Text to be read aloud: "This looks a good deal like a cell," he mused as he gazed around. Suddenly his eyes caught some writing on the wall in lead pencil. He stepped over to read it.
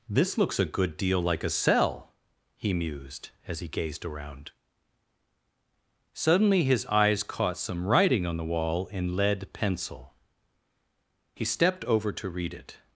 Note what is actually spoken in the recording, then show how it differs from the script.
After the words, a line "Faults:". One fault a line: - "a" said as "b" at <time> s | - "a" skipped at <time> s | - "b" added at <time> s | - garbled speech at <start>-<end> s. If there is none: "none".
"This looks a good deal like a cell," he mused as he gazed around. Suddenly his eyes caught some writing on the wall in lead pencil. He stepped over to read it.
Faults:
none